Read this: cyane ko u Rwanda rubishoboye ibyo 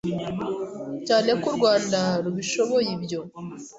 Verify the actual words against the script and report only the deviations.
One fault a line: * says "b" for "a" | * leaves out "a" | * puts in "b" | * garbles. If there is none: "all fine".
all fine